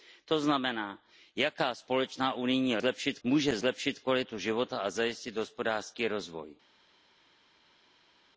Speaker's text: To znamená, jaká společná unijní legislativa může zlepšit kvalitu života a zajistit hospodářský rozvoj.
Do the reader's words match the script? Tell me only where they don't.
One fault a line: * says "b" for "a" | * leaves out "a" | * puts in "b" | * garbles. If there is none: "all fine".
* says "zlepšit" for "legislativa"